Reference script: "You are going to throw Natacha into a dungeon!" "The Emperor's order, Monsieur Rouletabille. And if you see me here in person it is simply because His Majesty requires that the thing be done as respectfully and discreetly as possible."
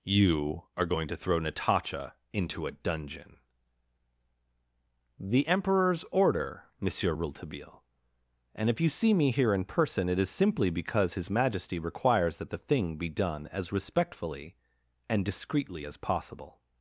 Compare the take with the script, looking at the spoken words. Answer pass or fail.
pass